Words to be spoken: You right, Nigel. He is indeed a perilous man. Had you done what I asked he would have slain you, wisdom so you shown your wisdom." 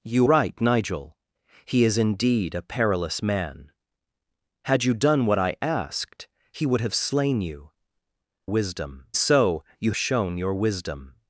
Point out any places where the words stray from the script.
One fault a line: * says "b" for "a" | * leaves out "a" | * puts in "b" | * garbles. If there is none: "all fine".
all fine